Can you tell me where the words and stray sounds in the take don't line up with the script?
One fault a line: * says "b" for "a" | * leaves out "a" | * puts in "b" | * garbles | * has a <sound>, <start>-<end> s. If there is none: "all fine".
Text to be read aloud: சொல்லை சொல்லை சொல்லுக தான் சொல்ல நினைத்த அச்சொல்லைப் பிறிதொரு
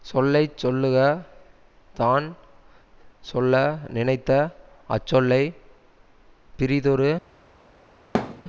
* leaves out "சொல்லை"
* has a thud, 8.1-8.4 s